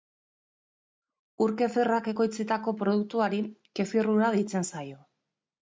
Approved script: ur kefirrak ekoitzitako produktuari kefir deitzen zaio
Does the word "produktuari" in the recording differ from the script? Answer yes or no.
no